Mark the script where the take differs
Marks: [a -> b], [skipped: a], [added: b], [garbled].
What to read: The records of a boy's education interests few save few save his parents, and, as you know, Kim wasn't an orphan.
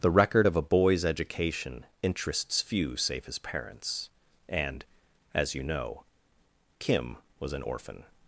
The [records -> record] of a boy's education interests few save [skipped: few save] his parents, and, as you know, Kim [wasn't -> was] an orphan.